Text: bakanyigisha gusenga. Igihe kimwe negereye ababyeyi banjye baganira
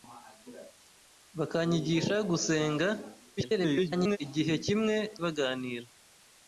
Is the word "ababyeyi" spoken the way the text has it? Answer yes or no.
no